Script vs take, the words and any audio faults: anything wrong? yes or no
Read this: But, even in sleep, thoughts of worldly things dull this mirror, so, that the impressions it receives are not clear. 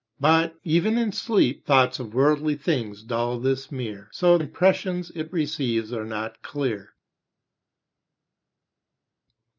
yes